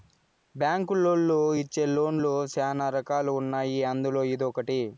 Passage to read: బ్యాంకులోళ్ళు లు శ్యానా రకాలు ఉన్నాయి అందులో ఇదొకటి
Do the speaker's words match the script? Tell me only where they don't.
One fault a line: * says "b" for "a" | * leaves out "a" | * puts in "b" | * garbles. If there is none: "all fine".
* puts in "ఇచ్చే లోన్"